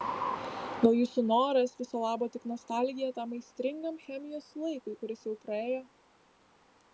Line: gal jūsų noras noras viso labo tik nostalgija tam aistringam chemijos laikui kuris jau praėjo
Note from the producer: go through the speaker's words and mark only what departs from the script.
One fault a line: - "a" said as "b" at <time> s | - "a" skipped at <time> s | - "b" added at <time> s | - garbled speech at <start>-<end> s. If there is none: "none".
- "noras" skipped at 1.8 s